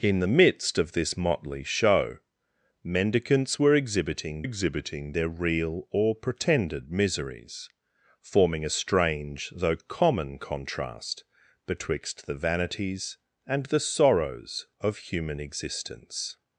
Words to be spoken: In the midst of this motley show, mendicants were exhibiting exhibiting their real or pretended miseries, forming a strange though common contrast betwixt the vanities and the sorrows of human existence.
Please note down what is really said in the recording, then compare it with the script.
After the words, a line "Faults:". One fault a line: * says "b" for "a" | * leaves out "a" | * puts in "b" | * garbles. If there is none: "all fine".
In the midst of this motley show, mendicants were exhibiting exhibiting their real or pretended miseries, forming a strange though common contrast betwixt the vanities and the sorrows of human existence.
Faults:
all fine